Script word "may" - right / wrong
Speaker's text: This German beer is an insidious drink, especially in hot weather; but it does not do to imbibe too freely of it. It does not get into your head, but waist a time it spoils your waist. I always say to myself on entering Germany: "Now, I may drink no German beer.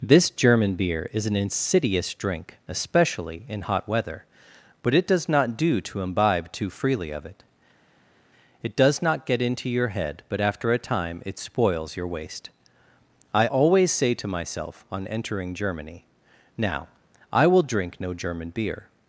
wrong